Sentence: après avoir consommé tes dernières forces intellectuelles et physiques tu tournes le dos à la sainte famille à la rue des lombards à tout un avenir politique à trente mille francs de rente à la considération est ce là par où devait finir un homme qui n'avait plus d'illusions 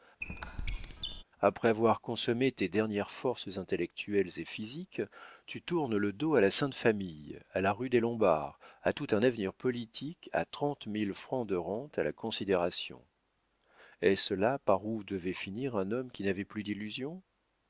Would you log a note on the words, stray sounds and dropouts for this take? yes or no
yes